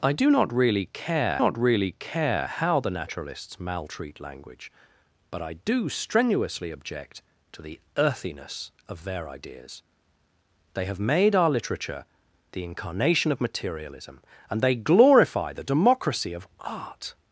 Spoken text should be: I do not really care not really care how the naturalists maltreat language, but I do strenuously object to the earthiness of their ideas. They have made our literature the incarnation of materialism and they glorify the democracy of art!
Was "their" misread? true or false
false